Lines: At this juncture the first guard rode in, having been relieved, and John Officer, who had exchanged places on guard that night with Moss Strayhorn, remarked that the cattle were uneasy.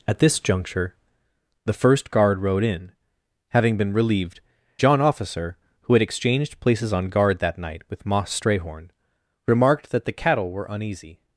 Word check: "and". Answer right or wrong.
wrong